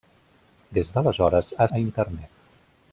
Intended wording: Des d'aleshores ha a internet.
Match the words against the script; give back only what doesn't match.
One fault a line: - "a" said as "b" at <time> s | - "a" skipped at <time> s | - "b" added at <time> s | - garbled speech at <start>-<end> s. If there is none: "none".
none